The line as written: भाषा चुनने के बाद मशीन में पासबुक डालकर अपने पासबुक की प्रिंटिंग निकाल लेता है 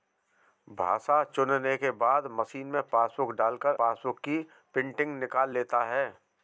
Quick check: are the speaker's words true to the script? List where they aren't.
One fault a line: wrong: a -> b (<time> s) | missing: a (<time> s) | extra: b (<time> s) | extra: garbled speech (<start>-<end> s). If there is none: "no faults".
missing: अपने (3.8 s)